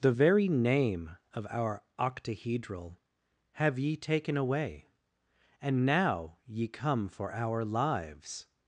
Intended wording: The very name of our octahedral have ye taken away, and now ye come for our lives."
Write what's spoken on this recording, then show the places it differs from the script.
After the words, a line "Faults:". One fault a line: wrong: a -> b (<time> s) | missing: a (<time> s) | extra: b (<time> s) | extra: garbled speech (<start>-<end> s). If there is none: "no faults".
The very name of our octahedral have ye taken away, and now ye come for our lives."
Faults:
no faults